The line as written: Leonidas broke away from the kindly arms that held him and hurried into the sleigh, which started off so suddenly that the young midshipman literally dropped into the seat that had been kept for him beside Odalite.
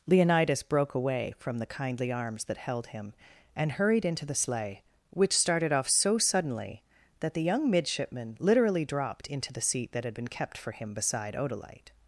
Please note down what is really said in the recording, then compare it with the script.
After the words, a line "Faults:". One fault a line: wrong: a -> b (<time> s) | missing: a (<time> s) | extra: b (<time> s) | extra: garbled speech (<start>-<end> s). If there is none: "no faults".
Leonidas broke away from the kindly arms that held him and hurried into the sleigh, which started off so suddenly that the young midshipman literally dropped into the seat that had been kept for him beside Odalite.
Faults:
no faults